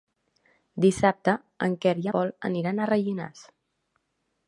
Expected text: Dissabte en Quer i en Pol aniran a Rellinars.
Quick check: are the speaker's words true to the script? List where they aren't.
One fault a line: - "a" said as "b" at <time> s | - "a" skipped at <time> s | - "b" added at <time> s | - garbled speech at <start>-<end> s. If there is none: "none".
- "en" skipped at 2.1 s